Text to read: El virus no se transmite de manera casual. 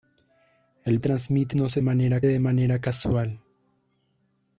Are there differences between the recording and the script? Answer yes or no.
yes